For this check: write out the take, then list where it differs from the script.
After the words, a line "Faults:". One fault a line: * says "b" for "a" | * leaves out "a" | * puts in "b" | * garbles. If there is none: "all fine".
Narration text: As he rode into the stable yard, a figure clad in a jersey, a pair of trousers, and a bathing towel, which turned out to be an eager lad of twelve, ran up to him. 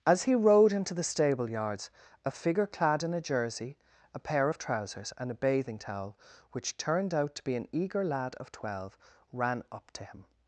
As he rode into the stable yards, a figure clad in a jersey, a pair of trousers, and a bathing towel, which turned out to be an eager lad of twelve, ran up to him.
Faults:
* says "yards" for "yard"